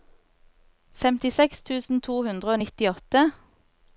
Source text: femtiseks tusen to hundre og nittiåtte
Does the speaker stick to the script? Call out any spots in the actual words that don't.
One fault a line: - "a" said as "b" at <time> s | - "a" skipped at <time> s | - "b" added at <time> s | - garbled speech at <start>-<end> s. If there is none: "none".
none